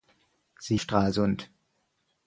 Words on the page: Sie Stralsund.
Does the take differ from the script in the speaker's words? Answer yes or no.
no